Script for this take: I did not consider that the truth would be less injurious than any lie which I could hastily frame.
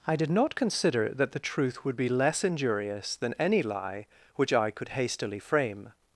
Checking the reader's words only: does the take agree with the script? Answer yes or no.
yes